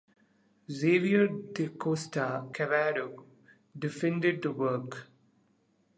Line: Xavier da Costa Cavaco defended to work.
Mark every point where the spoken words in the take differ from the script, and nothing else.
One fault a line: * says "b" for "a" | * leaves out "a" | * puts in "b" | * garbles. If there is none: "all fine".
all fine